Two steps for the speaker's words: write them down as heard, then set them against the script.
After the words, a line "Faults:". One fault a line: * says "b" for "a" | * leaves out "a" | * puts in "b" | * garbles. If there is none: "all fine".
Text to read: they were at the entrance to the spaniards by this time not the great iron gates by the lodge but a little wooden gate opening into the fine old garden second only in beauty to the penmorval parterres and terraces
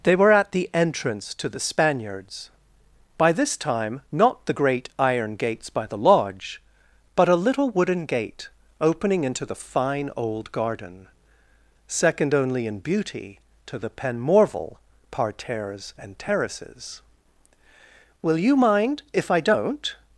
they were at the entrance to the spaniards by this time not the great iron gates by the lodge but a little wooden gate opening into the fine old garden second only in beauty to the penmorval parterres and terraces will you mind if i don't
Faults:
* puts in "will you mind if i don't"